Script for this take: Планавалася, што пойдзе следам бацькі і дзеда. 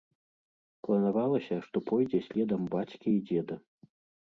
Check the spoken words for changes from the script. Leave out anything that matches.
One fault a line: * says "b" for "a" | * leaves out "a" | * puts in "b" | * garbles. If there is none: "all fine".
all fine